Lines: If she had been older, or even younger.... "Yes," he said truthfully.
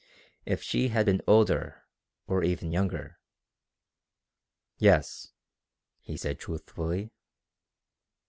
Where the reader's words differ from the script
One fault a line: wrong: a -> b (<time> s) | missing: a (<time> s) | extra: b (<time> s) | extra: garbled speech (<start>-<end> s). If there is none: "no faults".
no faults